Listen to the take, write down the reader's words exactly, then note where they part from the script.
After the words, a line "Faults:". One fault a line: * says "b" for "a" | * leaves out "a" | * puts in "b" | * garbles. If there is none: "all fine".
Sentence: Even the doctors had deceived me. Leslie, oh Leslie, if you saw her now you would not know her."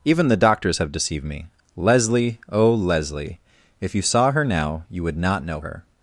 Even the doctors have deceived me. Leslie, oh Leslie, if you saw her now you would not know her."
Faults:
* says "have" for "had"